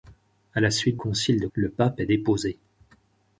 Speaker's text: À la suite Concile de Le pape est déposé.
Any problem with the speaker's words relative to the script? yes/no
no